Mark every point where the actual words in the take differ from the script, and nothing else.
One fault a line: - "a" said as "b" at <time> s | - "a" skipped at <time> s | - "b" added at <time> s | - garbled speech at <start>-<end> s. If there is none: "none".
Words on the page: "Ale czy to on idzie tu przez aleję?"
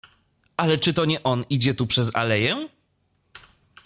- "nie" added at 1.1 s